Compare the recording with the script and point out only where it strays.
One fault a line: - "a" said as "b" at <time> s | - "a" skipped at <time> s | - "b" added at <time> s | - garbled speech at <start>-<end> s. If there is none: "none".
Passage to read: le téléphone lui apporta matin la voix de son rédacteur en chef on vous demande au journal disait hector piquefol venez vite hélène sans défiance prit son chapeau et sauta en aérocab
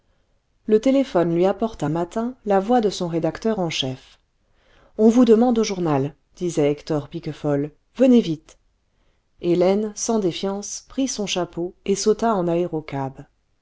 none